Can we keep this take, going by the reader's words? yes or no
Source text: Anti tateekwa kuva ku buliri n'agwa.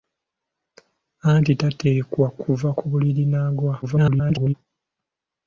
no